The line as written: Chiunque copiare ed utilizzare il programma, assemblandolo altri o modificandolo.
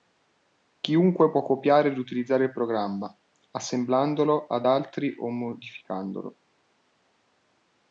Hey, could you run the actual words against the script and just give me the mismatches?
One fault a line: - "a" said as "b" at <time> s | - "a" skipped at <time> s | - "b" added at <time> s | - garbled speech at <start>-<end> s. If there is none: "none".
- "può" added at 1.3 s
- "ad" added at 4.5 s